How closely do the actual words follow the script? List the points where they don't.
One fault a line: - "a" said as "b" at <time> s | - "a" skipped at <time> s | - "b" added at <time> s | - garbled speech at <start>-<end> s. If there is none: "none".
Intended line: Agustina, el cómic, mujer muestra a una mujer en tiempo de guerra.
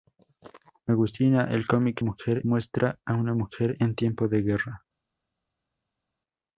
none